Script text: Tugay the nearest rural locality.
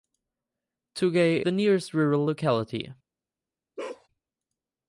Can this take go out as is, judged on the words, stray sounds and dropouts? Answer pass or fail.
fail